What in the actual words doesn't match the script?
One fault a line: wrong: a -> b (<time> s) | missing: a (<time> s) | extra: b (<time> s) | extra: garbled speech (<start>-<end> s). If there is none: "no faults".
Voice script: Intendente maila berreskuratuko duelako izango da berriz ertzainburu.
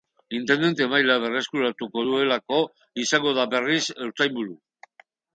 no faults